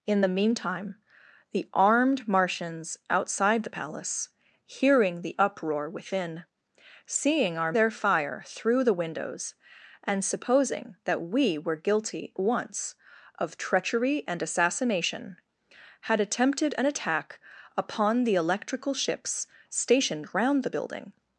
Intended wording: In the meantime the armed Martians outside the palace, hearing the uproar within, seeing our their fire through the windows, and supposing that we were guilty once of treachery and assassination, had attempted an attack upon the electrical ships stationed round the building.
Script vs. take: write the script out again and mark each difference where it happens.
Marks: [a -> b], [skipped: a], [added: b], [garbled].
In the meantime the armed Martians outside the palace, hearing the uproar within, seeing our their fire through the windows, and supposing that we were guilty once of treachery and assassination, had attempted an attack upon the electrical ships stationed round the building.